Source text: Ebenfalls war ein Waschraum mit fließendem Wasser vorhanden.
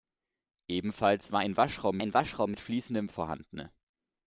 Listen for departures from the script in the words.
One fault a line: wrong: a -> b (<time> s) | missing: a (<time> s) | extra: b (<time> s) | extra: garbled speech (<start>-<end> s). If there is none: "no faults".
extra: ein Waschraum (2.0 s)
missing: Wasser (3.1 s)